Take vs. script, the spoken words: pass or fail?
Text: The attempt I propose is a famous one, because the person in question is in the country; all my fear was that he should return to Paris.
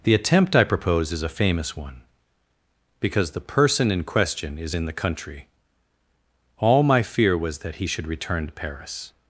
pass